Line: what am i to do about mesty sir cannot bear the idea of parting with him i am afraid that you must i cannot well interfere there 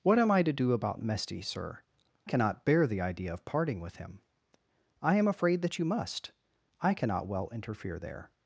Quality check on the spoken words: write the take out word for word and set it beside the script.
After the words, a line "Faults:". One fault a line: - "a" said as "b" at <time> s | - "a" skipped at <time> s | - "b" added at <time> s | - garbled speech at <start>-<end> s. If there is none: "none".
what am i to do about mesty sir cannot bear the idea of parting with him i am afraid that you must i cannot well interfere there
Faults:
none